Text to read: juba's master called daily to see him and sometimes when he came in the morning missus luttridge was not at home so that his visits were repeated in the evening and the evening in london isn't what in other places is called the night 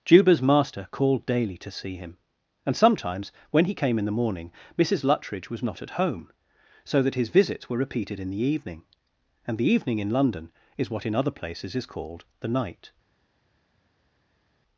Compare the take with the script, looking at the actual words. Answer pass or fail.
fail